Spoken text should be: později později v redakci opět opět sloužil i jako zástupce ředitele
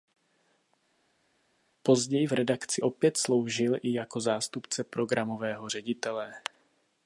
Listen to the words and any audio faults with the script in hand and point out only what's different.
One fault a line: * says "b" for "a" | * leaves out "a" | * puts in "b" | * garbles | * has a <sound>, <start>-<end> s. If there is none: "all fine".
* leaves out "později"
* leaves out "opět"
* puts in "programového"